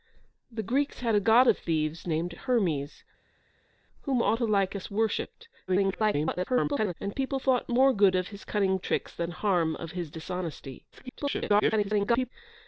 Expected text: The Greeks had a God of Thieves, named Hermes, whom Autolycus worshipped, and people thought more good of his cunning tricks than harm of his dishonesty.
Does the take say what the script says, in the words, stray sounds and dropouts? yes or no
no